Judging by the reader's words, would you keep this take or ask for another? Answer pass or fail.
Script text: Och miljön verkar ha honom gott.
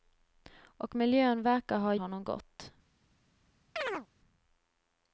pass